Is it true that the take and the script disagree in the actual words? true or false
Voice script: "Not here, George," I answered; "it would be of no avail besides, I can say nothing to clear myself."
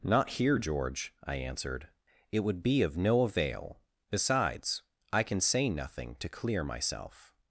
false